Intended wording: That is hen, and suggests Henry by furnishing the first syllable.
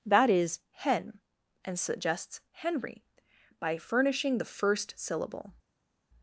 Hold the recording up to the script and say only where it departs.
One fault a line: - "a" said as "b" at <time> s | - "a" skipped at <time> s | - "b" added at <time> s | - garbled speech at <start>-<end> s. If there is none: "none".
none